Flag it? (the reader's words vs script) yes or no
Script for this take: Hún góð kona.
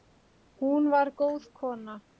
yes